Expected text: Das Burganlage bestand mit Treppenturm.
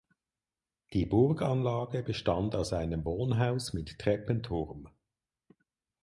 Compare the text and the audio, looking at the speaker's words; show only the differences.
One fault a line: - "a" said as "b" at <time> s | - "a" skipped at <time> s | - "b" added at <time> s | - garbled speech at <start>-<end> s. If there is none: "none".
- "Das" said as "Die" at 0.9 s
- "aus einem Wohnhaus" added at 2.5 s